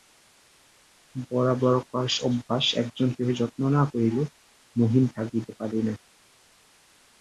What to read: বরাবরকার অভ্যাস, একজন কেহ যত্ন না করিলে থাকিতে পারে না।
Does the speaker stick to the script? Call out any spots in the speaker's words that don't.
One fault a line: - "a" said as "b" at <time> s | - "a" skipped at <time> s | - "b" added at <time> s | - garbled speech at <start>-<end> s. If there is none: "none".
- "মহিন" added at 4.8 s